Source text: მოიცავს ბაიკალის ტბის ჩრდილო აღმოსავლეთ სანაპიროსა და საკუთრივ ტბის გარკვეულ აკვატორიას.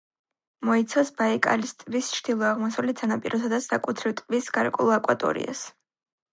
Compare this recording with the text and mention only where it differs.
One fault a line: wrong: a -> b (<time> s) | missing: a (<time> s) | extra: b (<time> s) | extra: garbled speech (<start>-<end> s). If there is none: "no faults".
no faults